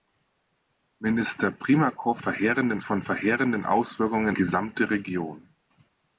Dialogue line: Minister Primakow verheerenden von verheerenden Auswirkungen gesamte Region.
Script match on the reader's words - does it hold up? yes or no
yes